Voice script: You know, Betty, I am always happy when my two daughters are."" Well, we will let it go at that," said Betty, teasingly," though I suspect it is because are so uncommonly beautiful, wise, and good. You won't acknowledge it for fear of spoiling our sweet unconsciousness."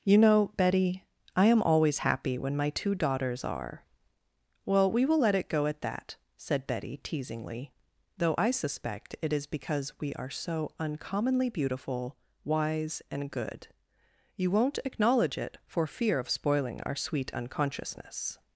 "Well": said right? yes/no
yes